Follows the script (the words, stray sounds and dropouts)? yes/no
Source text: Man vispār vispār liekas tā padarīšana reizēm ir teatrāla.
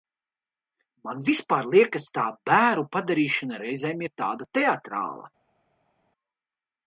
no